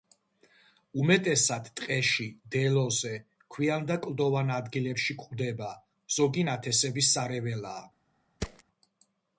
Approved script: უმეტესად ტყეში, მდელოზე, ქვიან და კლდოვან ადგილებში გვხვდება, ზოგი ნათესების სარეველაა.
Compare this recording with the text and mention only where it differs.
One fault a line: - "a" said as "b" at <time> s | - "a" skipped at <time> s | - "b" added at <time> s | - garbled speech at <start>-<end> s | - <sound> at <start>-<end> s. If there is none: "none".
- thud at 8.4-8.6 s